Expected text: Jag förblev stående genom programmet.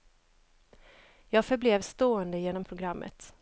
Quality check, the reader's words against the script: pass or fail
pass